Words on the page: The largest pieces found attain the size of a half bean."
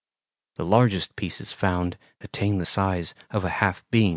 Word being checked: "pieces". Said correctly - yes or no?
yes